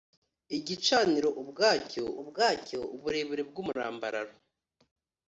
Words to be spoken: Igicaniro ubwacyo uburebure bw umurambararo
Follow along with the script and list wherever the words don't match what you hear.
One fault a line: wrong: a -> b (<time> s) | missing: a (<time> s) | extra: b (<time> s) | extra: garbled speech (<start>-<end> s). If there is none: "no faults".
extra: ubwacyo (2.2 s)